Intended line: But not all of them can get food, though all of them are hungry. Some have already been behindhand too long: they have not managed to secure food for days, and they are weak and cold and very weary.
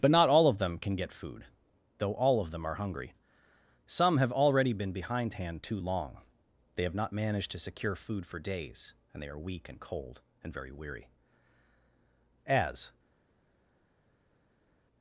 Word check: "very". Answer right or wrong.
right